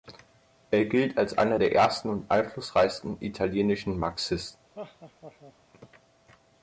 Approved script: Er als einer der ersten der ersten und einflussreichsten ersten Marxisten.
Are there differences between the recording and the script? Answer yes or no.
yes